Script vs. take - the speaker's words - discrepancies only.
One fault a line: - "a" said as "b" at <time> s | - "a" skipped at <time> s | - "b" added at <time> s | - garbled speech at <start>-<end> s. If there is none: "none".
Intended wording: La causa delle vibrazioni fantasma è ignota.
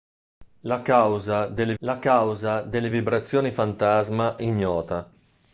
- "la causa delle" added at 1.8 s
- "è" skipped at 4.4 s